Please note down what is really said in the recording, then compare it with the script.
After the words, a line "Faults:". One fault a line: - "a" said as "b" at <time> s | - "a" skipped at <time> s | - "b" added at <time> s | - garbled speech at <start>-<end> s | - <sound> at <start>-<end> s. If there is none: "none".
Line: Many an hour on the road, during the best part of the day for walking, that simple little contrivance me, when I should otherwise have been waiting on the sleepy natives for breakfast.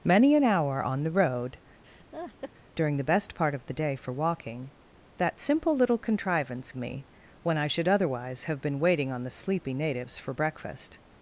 Many an hour on the road, during the best part of the day for walking, that simple little contrivance me, when I should otherwise have been waiting on the sleepy natives for breakfast.
Faults:
- laugh at 1.8-2.5 s